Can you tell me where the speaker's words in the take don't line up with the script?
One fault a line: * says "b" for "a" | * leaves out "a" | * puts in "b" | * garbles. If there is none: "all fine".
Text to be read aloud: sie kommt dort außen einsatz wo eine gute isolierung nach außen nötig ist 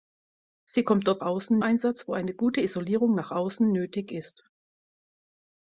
all fine